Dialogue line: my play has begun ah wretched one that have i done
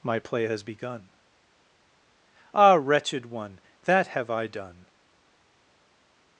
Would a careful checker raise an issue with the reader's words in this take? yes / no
no